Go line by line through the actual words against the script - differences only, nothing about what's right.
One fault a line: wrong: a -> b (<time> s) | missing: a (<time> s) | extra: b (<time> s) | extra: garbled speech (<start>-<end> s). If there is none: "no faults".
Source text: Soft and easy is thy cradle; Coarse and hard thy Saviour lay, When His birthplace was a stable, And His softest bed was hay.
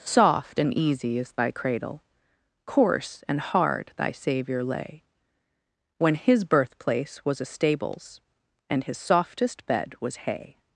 wrong: stable -> stables (7.5 s)